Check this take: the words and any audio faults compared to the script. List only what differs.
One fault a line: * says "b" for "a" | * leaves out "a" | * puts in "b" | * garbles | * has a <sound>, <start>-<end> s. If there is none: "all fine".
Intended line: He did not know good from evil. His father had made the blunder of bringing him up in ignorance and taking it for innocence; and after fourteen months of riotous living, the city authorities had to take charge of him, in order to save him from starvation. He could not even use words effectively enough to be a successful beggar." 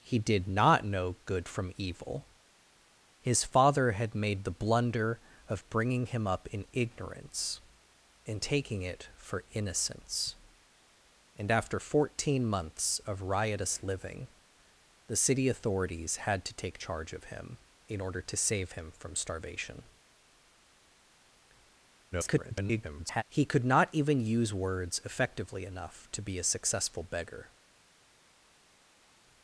* garbles